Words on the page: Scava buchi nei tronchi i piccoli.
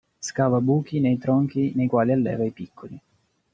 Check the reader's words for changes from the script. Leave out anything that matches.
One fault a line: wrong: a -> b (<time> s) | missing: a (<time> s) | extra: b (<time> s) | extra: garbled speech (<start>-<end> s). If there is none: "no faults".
extra: nei quali alleva (1.8 s)